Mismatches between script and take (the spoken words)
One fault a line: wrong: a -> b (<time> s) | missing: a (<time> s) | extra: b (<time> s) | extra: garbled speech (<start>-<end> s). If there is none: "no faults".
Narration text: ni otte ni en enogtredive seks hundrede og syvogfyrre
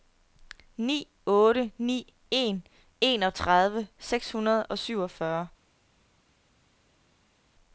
no faults